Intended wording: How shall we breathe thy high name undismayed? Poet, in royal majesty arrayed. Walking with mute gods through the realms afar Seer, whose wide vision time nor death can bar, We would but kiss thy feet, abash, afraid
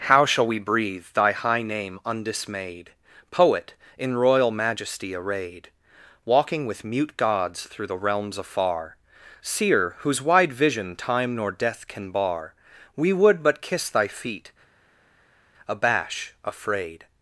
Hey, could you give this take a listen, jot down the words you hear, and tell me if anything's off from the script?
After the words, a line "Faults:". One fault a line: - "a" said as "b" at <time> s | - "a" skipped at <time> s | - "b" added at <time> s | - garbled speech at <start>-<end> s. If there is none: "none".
How shall we breathe thy high name undismayed? Poet, in royal majesty arrayed. Walking with mute gods through the realms afar Seer, whose wide vision time nor death can bar, We would but kiss thy feet, abash, afraid
Faults:
none